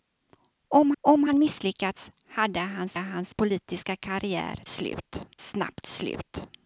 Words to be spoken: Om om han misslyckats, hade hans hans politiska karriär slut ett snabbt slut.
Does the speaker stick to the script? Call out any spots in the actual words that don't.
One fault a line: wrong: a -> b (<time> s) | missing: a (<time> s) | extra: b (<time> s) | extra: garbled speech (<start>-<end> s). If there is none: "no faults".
no faults